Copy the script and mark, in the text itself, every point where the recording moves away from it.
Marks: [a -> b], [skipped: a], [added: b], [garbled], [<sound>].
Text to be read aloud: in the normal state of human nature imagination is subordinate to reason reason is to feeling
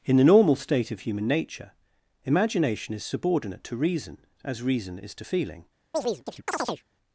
in the normal state of human nature imagination is subordinate to reason [added: as] reason is to feeling [chirp]